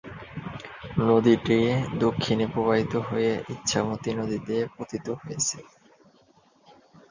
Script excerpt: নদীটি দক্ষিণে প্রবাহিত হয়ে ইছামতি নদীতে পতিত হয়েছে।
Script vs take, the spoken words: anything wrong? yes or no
no